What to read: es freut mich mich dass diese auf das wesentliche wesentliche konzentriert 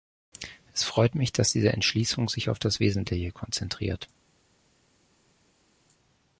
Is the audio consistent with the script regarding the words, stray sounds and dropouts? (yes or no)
no